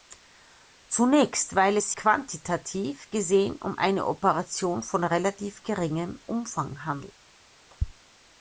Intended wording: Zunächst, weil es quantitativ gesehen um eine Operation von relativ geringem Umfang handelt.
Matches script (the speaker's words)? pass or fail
pass